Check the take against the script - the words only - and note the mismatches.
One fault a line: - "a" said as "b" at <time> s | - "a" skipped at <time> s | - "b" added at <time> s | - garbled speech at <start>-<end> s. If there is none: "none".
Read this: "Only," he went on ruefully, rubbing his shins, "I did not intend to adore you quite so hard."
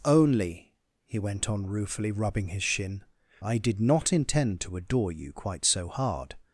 - "shins" said as "shin" at 2.6 s